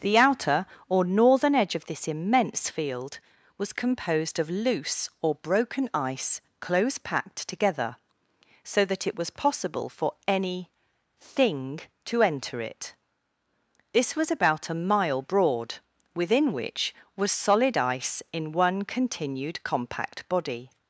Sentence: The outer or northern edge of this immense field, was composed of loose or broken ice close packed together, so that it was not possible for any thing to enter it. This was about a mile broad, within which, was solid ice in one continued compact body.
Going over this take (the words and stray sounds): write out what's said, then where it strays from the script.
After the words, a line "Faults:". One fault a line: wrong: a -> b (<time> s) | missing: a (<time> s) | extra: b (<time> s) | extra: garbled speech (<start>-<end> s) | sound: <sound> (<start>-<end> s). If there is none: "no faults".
The outer or northern edge of this immense field, was composed of loose or broken ice close packed together, so that it was possible for any thing to enter it. This was about a mile broad, within which, was solid ice in one continued compact body.
Faults:
missing: not (9.3 s)